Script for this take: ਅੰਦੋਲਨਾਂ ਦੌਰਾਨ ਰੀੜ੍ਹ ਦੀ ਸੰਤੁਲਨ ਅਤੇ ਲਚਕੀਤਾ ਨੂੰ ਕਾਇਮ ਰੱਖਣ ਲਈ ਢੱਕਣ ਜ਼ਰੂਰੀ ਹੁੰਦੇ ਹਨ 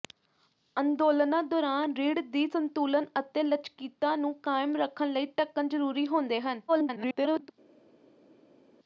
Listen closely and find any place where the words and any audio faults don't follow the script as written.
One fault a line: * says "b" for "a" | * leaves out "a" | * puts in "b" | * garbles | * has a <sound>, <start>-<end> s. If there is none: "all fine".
* garbles